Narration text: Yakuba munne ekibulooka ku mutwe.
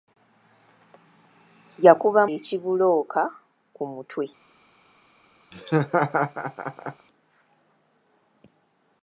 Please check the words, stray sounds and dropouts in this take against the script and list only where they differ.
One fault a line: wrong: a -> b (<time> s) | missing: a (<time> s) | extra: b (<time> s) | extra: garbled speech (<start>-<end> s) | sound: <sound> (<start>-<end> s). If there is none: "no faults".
missing: munne (2.2 s)
sound: laugh (5.5-7.1 s)